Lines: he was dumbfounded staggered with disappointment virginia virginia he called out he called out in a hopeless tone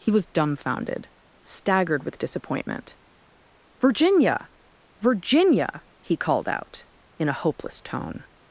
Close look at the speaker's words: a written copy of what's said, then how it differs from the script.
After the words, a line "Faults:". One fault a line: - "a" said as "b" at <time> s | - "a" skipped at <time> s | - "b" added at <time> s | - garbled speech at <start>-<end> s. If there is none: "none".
he was dumbfounded staggered with disappointment virginia virginia he called out in a hopeless tone
Faults:
- "he called out" skipped at 6.8 s